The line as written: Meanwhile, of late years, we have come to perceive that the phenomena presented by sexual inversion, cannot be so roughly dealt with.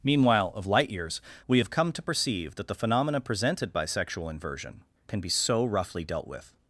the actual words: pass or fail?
fail